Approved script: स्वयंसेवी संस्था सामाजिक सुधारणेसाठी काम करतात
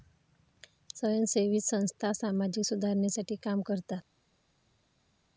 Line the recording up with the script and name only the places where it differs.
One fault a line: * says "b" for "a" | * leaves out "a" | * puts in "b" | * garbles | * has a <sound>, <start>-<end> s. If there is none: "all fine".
all fine